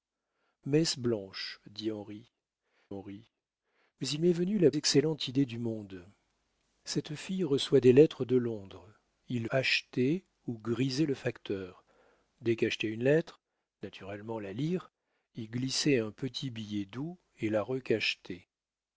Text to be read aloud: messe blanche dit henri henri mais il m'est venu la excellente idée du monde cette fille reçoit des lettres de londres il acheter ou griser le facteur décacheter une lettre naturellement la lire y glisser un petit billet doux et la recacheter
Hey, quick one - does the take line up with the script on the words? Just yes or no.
yes